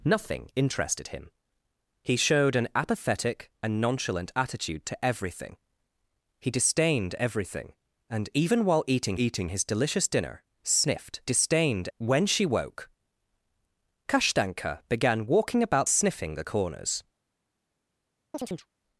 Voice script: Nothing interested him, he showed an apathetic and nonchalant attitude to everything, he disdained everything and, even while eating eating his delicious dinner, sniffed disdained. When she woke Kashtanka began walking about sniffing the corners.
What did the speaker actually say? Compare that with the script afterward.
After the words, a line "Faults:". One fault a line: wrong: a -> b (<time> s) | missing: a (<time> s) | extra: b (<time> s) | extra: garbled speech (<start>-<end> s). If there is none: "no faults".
Nothing interested him, he showed an apathetic and nonchalant attitude to everything, he disdained everything and, even while eating eating his delicious dinner, sniffed disdained. When she woke Kashtanka began walking about sniffing the corners.
Faults:
no faults